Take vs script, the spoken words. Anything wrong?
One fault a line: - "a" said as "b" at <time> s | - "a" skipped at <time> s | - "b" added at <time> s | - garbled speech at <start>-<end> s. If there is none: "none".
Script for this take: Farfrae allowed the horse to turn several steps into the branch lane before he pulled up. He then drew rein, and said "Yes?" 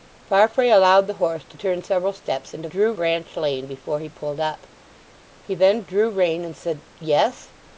- "the" said as "drew" at 2.7 s